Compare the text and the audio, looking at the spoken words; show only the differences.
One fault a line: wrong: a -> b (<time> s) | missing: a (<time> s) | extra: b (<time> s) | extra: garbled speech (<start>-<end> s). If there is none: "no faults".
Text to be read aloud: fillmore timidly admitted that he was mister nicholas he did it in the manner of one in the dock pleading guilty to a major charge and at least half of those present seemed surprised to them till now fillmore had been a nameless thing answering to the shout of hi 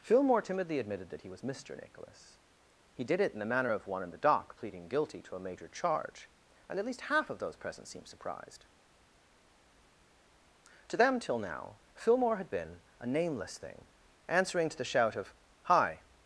no faults